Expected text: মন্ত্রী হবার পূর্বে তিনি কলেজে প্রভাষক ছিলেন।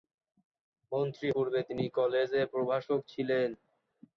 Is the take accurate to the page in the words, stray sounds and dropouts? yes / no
no